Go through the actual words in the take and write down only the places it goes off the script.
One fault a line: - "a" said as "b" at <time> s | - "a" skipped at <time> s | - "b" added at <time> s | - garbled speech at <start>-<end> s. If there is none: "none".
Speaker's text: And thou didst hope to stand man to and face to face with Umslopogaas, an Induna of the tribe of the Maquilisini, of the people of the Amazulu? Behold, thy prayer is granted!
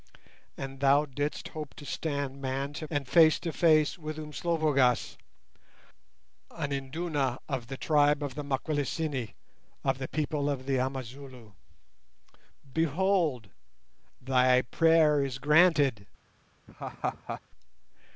none